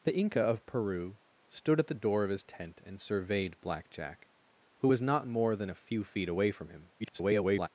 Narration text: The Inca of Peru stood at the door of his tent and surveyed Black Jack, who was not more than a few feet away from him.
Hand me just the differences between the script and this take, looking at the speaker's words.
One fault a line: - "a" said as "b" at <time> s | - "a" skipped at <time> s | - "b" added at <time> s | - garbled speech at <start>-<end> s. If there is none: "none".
- garbled speech at 7.0-7.7 s